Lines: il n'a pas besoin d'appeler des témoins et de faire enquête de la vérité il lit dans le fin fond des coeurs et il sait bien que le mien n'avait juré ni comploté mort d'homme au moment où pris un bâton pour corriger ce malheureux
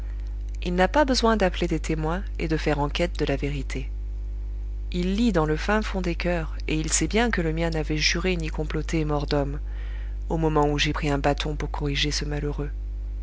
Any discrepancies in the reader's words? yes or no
yes